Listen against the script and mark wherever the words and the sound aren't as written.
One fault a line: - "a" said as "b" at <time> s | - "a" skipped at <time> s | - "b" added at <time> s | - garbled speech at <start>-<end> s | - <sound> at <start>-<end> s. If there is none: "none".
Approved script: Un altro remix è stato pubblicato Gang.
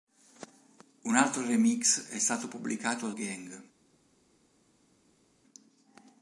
none